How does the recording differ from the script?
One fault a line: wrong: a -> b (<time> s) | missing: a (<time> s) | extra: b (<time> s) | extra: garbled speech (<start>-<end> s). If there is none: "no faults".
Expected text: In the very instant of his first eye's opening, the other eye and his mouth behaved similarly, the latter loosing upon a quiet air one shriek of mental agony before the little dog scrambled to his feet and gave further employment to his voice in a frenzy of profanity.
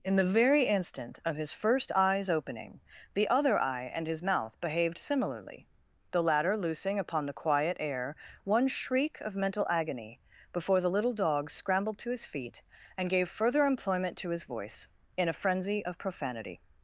wrong: a -> the (7.3 s)